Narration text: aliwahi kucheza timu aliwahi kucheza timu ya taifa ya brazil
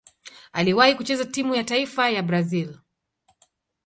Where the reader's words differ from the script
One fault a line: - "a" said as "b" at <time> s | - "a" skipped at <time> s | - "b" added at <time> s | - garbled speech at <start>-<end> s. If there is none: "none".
- "aliwahi kucheza timu" skipped at 1.6 s